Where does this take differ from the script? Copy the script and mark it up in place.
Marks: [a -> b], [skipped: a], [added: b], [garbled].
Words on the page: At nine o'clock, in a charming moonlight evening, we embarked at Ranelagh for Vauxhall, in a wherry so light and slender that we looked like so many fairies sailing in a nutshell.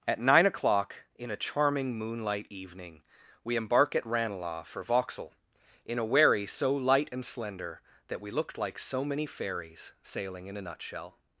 At nine o'clock, in a charming moonlight evening, we [embarked -> embark] at Ranelagh for Vauxhall, in a wherry so light and slender that we looked like so many fairies sailing in a nutshell.